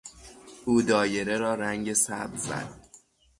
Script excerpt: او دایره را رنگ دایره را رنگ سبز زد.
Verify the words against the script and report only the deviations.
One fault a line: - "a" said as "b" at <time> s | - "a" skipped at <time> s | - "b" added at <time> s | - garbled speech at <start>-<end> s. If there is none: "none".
- "دایره را رنگ" skipped at 1.9 s